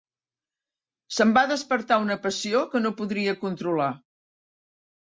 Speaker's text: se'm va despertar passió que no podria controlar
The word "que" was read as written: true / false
true